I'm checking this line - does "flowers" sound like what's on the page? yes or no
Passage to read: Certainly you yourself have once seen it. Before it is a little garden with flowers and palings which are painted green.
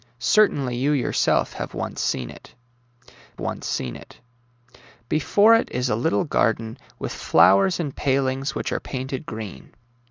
yes